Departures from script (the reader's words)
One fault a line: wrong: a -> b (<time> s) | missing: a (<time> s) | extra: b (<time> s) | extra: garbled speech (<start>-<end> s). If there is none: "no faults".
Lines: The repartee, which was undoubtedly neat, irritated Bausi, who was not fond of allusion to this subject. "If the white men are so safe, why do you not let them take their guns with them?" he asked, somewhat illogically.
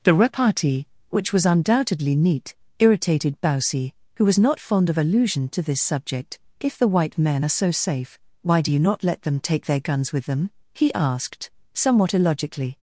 no faults